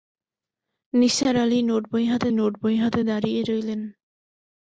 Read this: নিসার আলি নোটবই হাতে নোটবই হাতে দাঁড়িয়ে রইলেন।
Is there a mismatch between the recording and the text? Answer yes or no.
no